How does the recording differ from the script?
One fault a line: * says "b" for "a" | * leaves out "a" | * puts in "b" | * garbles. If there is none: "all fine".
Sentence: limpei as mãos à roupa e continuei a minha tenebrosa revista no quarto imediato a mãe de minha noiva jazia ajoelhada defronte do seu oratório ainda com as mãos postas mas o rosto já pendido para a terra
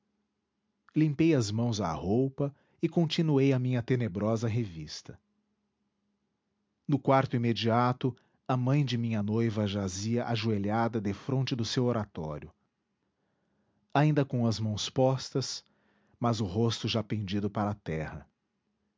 all fine